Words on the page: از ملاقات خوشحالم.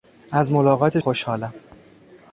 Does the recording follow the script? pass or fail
pass